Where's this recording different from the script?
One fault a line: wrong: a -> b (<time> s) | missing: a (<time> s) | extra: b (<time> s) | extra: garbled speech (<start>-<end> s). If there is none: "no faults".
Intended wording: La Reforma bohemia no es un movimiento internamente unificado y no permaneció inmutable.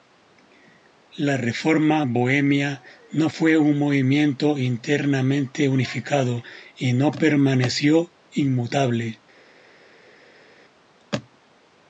wrong: es -> fue (3.2 s)